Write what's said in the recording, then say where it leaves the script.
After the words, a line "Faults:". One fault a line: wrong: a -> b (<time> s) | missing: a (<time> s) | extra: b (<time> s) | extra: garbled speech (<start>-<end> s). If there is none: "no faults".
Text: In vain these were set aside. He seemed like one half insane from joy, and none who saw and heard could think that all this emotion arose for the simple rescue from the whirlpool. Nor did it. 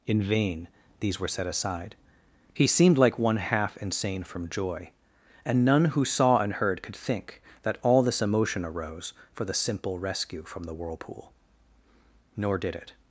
In vain these were set aside. He seemed like one half insane from joy, and none who saw and heard could think that all this emotion arose for the simple rescue from the whirlpool. Nor did it.
Faults:
no faults